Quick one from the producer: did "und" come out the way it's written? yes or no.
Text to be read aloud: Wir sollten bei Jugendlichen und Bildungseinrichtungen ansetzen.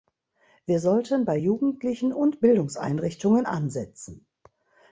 yes